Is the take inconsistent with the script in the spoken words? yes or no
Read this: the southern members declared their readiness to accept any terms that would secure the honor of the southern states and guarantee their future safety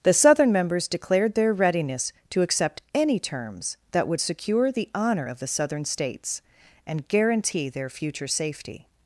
no